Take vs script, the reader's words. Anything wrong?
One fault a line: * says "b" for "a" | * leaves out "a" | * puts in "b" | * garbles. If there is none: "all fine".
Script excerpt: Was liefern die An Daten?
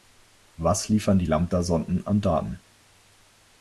* puts in "Lambda Sonden"